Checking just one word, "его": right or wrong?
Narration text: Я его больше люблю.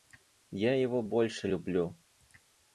right